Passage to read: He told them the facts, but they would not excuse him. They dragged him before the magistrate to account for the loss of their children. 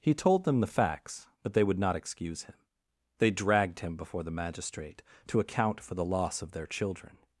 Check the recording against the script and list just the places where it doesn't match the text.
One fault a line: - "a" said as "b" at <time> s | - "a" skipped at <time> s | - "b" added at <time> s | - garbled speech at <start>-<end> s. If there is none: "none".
none